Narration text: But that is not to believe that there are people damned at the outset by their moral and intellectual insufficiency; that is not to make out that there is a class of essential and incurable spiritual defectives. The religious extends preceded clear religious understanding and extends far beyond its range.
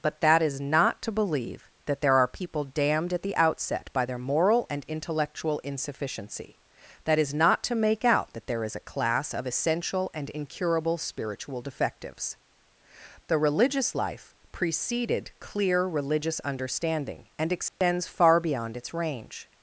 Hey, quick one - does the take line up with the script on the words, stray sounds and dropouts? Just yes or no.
no